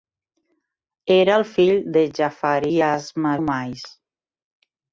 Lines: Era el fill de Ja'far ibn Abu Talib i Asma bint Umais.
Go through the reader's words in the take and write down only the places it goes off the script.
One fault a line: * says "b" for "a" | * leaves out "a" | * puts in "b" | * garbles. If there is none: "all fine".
* leaves out "ibn Abu Talib"
* leaves out "bint"